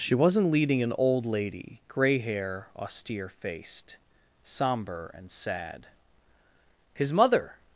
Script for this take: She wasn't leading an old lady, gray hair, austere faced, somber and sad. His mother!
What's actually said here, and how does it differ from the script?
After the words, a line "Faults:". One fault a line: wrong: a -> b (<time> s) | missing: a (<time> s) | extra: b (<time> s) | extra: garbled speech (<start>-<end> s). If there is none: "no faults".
She wasn't leading an old lady, gray hair, austere faced, somber and sad. His mother!
Faults:
no faults